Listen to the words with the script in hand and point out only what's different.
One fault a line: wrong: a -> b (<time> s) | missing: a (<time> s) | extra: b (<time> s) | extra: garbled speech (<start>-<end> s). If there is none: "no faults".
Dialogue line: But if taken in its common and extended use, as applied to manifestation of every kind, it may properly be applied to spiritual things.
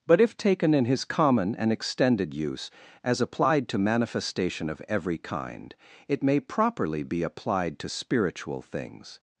wrong: its -> his (0.8 s)